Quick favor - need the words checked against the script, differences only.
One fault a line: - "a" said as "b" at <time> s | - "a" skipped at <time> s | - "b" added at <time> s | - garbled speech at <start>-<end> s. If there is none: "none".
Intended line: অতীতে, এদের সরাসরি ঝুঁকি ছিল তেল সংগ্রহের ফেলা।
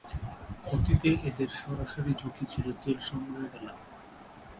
none